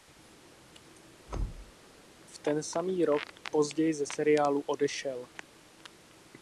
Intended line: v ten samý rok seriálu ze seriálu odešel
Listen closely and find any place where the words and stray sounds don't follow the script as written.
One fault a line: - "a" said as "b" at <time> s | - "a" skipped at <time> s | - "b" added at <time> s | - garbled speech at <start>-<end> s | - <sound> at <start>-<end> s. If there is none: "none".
- thud at 1.3-1.7 s
- "seriálu" said as "později" at 3.5 s